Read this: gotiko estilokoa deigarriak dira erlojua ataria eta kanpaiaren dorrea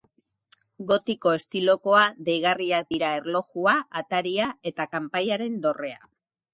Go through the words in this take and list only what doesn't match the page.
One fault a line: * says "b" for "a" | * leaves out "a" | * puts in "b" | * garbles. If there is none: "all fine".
all fine